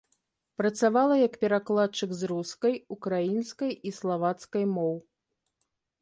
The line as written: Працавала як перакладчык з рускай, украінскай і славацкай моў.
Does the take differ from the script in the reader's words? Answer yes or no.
no